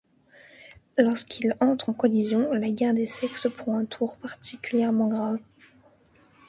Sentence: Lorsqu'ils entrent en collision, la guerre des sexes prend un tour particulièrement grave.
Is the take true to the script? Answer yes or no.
yes